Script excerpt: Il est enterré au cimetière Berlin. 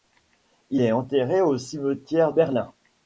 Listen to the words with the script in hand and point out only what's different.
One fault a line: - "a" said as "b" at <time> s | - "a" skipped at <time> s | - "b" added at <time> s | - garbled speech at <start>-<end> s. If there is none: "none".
none